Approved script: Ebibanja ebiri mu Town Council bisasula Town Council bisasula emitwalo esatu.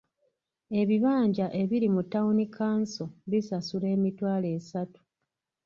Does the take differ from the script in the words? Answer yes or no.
yes